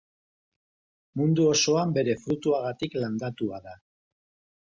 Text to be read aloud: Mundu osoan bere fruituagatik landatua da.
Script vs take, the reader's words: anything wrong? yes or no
no